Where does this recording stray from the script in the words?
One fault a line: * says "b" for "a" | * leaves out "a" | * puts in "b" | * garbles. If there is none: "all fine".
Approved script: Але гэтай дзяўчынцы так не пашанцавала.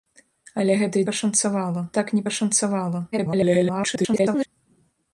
* says "пашанцавала" for "дзяўчынцы"
* garbles